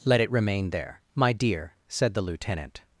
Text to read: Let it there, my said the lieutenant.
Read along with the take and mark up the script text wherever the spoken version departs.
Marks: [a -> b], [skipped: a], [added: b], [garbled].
Let it [added: remain] there, my [added: dear] said the lieutenant.